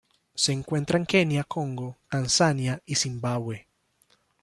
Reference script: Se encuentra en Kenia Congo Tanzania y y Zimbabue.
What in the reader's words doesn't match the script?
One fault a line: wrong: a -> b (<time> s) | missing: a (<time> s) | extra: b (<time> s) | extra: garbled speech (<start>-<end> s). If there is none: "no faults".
missing: y (2.9 s)